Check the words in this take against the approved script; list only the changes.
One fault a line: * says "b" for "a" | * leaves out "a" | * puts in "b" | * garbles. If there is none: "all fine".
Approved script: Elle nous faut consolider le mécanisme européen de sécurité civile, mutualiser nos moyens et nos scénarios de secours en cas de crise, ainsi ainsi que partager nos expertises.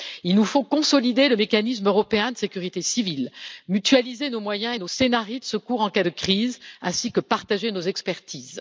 * says "Il" for "Elle"
* leaves out "ainsi"